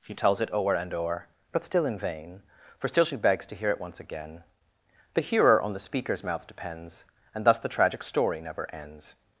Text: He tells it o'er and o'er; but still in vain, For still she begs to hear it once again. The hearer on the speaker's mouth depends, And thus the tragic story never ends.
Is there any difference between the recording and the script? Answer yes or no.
no